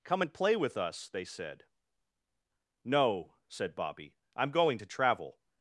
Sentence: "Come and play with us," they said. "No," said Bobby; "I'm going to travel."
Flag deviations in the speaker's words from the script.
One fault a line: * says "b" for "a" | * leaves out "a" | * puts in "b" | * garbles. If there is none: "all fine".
all fine